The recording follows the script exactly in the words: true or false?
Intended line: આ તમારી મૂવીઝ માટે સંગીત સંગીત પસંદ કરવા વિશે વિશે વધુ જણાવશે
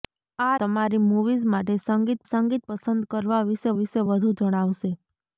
true